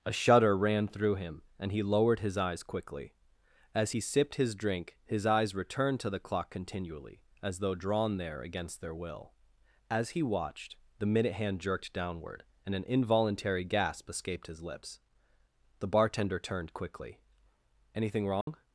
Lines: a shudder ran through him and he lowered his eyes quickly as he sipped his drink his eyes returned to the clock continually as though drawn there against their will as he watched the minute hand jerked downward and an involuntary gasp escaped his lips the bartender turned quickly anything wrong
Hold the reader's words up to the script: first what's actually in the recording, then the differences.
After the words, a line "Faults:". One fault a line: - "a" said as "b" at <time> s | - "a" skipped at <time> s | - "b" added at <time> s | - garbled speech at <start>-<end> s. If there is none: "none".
a shudder ran through him and he lowered his eyes quickly as he sipped his drink his eyes returned to the clock continually as though drawn there against their will as he watched the minute hand jerked downward and an involuntary gasp escaped his lips the bartender turned quickly anything wrong
Faults:
none